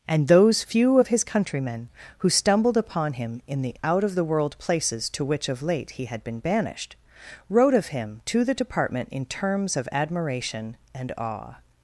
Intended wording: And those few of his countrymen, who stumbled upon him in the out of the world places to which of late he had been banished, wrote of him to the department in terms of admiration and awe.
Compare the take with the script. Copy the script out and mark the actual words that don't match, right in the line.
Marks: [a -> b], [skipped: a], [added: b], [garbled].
And those few of his countrymen, who stumbled upon him in the out of the world places to which of late he had been banished, wrote of him to the department in terms of admiration and awe.